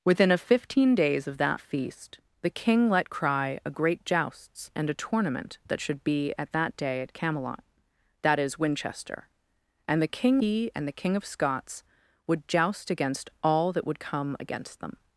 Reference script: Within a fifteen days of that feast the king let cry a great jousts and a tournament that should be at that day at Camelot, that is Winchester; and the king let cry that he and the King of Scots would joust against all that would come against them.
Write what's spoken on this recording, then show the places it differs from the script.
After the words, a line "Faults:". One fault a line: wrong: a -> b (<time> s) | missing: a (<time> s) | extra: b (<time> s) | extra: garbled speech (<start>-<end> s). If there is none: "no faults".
Within a fifteen days of that feast the king let cry a great jousts and a tournament that should be at that day at Camelot, that is Winchester; and the king he and the King of Scots would joust against all that would come against them.
Faults:
missing: let cry that (10.4 s)